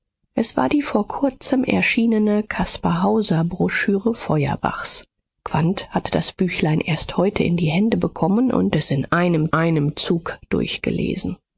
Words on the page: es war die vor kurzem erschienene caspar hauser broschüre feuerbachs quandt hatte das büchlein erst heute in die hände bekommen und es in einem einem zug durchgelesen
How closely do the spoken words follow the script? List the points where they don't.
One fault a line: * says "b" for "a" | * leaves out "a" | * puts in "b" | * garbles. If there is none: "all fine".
all fine